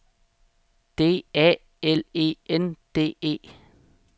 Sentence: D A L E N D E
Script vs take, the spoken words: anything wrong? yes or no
no